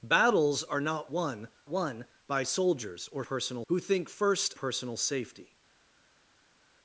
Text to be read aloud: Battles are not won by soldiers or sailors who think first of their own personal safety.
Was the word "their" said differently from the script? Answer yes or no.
yes